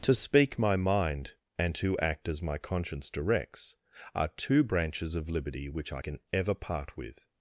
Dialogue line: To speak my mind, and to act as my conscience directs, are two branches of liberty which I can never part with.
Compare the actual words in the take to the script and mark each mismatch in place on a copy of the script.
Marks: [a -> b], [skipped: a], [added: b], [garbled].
To speak my mind, and to act as my conscience directs, are two branches of liberty which I can [never -> ever] part with.